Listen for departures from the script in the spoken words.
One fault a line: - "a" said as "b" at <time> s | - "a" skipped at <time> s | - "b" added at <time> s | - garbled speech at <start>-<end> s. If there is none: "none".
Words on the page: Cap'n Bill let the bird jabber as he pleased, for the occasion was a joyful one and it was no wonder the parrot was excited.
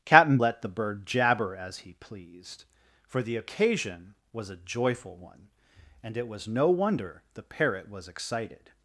- "Bill" skipped at 0.4 s